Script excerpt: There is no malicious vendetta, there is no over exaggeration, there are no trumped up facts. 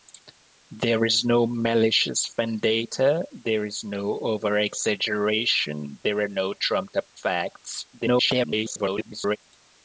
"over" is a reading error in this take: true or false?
false